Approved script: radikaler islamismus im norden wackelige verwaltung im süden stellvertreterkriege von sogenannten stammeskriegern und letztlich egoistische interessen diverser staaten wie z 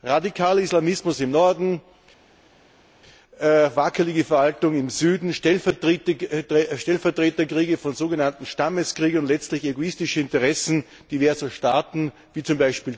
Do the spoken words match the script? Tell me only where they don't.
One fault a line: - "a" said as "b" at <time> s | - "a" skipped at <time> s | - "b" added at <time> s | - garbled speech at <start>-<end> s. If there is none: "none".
none